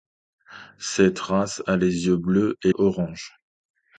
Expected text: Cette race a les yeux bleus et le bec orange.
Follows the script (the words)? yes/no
no